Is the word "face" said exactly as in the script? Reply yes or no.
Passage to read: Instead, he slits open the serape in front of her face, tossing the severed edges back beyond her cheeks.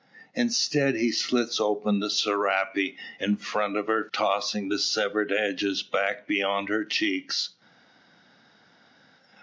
no